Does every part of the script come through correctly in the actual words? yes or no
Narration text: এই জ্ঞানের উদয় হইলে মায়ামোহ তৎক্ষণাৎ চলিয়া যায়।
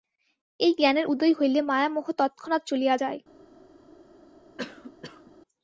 yes